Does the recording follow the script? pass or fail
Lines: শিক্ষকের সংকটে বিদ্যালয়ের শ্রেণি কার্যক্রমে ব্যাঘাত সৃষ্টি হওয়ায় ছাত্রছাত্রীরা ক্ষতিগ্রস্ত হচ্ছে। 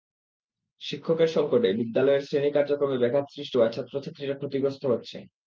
pass